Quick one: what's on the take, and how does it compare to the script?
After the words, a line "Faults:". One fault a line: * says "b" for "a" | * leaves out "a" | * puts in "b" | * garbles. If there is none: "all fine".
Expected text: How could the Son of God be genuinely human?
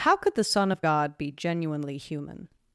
How could the Son of God be genuinely human?
Faults:
all fine